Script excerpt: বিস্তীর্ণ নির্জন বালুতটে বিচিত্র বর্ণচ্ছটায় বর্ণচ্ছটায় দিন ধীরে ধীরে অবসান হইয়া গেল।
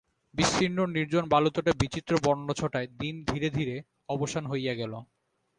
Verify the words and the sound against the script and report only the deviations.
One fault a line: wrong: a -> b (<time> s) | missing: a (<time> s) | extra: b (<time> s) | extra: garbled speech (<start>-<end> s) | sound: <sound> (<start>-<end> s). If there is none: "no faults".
missing: বর্ণচ্ছটায় (2.9 s)